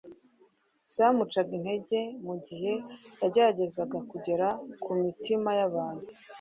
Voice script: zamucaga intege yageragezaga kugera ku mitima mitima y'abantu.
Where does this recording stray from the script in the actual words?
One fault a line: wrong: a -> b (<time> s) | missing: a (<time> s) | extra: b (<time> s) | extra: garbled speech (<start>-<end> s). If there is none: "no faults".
extra: mu gihe (2.2 s)
missing: mitima (5.5 s)